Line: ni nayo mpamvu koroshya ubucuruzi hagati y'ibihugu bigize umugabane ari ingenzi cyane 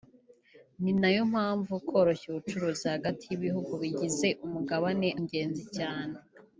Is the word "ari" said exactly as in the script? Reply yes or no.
no